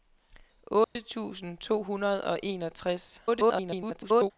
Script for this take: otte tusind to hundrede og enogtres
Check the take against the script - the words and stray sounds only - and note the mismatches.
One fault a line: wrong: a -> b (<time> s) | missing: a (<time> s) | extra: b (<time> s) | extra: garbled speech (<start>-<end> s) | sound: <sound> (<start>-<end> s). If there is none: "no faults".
sound: dropout (0.8-1.0 s)
extra: garbled speech (3.3-4.3 s)